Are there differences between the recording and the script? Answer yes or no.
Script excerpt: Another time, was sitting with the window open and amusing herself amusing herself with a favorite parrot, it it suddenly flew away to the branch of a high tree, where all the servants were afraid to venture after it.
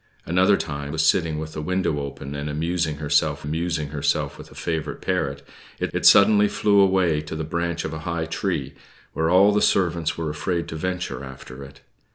no